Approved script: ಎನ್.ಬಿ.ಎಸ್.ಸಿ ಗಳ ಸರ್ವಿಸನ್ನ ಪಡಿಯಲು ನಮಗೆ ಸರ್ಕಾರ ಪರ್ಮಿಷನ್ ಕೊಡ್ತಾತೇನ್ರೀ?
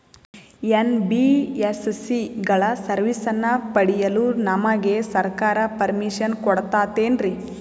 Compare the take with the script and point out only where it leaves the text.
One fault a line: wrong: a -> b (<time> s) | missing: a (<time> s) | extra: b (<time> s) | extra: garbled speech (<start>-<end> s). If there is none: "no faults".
no faults